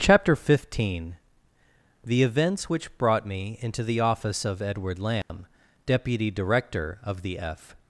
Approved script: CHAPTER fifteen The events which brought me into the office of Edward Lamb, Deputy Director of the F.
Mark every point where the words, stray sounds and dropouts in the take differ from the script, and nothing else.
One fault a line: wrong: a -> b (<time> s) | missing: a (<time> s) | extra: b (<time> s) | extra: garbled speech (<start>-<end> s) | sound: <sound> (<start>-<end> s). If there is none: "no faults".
sound: dropout (5.2-5.3 s)